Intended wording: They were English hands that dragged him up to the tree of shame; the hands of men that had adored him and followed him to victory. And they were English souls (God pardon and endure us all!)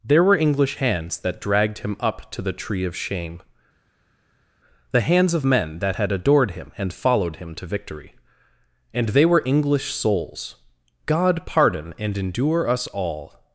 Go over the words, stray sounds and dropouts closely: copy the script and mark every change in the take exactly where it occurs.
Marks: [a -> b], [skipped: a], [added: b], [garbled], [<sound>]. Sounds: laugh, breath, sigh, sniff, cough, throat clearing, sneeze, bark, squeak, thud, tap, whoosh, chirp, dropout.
[They -> There] were English hands that dragged him up to the tree of shame; the hands of men that had adored him and followed him to victory. And they were English souls (God pardon and endure us all!)